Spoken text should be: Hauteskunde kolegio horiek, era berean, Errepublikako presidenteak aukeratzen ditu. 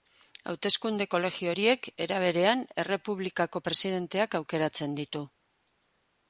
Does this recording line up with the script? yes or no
yes